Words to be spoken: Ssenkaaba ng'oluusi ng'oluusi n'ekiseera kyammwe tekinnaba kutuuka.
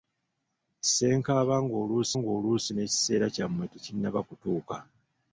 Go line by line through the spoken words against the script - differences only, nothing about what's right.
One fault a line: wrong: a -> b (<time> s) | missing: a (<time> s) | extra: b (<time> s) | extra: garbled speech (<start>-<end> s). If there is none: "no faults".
no faults